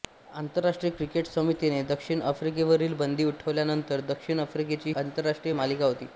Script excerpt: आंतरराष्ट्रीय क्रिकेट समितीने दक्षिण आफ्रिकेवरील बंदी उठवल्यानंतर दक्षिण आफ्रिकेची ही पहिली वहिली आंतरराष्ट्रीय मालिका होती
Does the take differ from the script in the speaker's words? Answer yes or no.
yes